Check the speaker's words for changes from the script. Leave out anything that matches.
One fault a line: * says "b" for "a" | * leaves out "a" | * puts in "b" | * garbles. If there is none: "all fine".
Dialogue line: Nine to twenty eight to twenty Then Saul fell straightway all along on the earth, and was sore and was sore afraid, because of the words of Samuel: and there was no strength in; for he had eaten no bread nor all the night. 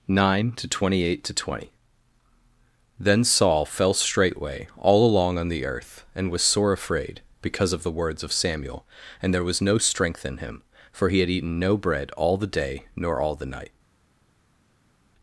* leaves out "and was sore"
* puts in "him"
* puts in "all the day"